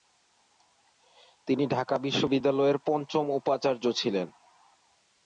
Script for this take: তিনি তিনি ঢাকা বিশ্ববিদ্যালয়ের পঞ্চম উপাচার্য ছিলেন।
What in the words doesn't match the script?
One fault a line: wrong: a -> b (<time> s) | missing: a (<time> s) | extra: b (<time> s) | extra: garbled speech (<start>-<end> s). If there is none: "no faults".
missing: তিনি (1.6 s)